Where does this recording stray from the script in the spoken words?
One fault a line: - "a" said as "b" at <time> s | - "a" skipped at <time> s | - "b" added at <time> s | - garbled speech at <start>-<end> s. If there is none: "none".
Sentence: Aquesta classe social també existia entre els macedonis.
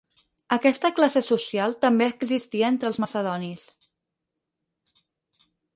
none